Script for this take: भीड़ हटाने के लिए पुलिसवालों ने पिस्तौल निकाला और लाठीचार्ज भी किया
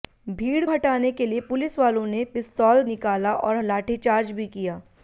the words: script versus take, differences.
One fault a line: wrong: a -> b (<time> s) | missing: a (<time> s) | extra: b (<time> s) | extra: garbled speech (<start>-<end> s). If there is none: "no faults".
no faults